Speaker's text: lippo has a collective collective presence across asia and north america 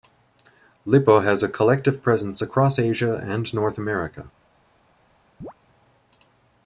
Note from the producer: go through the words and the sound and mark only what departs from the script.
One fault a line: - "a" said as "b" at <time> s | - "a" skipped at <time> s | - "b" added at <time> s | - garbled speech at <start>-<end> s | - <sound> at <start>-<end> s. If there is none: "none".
- "collective" skipped at 2.0 s
- chirp at 5.4-5.5 s